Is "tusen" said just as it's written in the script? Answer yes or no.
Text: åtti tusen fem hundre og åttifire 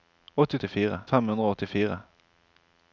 no